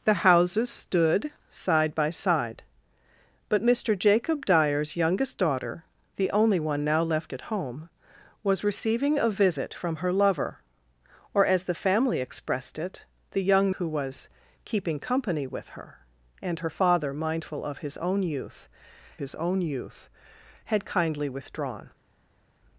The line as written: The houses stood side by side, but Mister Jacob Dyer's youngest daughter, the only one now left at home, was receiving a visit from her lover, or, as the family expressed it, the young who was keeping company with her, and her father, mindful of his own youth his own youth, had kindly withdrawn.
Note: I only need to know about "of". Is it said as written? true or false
true